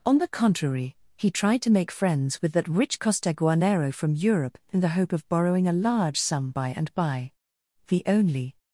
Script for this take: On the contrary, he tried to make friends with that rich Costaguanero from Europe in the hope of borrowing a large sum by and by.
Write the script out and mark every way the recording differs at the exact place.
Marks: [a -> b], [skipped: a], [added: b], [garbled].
On the contrary, he tried to make friends with that rich Costaguanero from Europe in the hope of borrowing a large sum by and by. [added: The only]